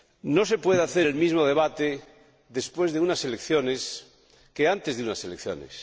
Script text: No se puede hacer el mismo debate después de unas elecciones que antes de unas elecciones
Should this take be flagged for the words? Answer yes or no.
no